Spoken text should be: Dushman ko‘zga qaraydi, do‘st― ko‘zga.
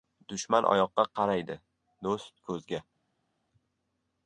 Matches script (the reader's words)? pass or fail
fail